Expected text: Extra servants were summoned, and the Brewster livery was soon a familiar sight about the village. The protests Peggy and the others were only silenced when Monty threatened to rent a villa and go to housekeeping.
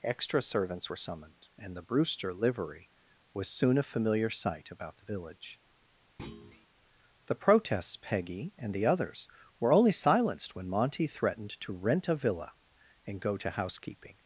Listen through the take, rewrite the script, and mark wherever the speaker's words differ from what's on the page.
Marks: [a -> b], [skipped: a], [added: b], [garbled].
Extra servants were summoned, and the Brewster livery was soon a familiar sight about the village. The protests Peggy and the others were only silenced when Monty threatened to rent a villa and go to housekeeping.